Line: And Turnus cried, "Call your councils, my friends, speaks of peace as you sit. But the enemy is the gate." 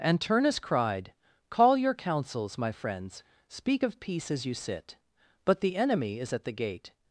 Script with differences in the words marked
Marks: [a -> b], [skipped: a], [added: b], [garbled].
And Turnus cried, "Call your councils, my friends, [speaks -> speak] of peace as you sit. But the enemy is [added: at] the gate."